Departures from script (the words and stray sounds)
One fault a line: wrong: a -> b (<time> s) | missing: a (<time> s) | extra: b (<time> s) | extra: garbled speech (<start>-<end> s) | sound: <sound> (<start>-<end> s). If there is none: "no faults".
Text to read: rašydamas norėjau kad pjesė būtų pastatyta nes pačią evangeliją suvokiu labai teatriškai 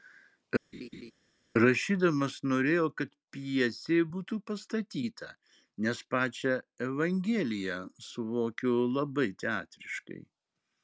sound: laugh (0.7-1.1 s)